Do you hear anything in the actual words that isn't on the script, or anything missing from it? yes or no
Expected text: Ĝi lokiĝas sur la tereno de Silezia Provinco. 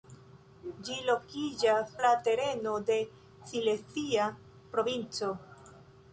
yes